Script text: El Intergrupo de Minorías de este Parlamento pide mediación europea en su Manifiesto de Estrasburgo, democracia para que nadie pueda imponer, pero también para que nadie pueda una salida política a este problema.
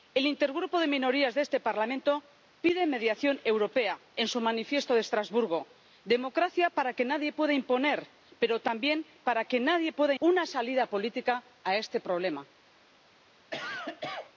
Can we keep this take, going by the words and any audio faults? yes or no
no